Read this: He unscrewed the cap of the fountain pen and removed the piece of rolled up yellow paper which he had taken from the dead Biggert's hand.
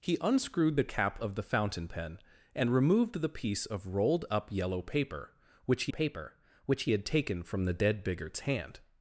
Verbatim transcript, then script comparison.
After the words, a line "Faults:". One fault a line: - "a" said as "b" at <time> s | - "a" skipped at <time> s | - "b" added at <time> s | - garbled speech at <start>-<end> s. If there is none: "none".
He unscrewed the cap of the fountain pen and removed the piece of rolled up yellow paper which he paper which he had taken from the dead Biggert's hand.
Faults:
- "paper which he" added at 5.9 s